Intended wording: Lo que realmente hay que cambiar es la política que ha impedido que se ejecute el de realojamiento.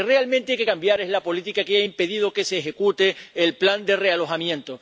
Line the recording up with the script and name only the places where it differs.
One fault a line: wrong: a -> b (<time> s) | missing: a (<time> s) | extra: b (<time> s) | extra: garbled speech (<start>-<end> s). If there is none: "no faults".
extra: plan (3.5 s)